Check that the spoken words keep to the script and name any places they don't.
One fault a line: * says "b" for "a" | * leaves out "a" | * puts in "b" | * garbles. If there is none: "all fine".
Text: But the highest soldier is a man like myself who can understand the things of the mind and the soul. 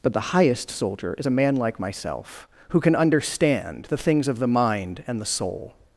all fine